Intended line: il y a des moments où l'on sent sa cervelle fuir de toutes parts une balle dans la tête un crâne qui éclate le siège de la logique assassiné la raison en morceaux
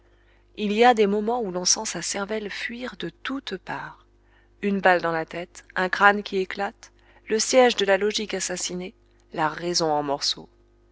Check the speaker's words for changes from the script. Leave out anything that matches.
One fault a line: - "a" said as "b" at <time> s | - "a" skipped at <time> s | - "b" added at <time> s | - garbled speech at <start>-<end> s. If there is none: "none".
none